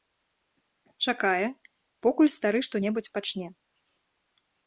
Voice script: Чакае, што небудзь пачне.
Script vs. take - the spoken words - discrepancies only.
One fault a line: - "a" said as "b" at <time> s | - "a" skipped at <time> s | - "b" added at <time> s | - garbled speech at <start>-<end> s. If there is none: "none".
- "покуль стары" added at 2.1 s